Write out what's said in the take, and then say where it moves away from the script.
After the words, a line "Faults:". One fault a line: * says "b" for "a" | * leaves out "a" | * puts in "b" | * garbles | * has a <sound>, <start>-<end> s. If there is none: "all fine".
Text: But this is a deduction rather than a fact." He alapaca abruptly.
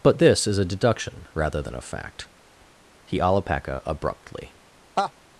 But this is a deduction rather than a fact." He alapaca abruptly.
Faults:
* has a laugh, 5.0-5.1 s